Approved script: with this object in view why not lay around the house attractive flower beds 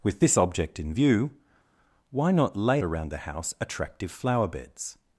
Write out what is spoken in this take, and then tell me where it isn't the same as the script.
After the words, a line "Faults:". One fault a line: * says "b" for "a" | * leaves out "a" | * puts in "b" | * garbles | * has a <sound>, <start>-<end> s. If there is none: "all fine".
with this object in view why not lay around the house attractive flower beds
Faults:
all fine